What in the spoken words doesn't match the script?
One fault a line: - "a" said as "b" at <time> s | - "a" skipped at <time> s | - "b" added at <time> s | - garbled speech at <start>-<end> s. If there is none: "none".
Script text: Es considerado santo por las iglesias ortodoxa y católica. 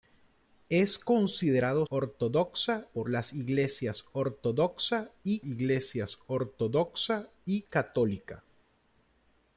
- "santo" said as "ortodoxa" at 1.9 s
- "iglesias ortodoxa y" added at 5.4 s